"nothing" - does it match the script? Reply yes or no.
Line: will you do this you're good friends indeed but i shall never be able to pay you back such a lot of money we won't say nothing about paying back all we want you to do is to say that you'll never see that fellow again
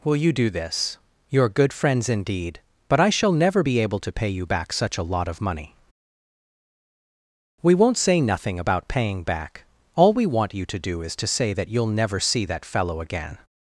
yes